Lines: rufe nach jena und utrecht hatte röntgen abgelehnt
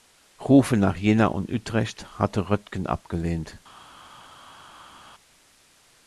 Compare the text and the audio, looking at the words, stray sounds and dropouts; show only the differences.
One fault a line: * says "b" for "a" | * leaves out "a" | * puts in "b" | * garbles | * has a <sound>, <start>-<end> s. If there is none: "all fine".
all fine